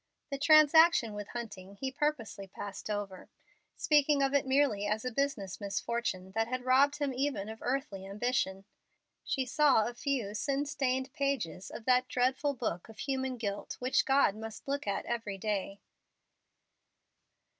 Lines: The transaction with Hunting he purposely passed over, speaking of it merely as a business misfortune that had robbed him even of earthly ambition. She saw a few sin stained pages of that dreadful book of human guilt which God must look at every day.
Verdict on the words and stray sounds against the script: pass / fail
pass